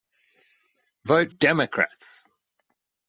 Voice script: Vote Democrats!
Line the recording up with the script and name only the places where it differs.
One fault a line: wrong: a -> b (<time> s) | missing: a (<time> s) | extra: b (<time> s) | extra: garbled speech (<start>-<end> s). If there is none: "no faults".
no faults